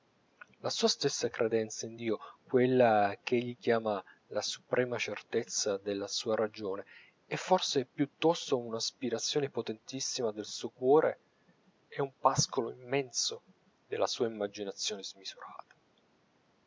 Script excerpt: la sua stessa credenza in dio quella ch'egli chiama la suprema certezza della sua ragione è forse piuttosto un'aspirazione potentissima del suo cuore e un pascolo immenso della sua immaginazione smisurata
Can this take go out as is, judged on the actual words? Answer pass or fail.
pass